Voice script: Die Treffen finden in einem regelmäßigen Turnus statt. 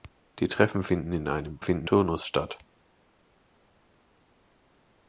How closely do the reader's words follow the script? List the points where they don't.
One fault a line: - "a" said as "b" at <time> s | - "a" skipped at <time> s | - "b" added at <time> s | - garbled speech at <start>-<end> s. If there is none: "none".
- "regelmäßigen" said as "finden" at 1.6 s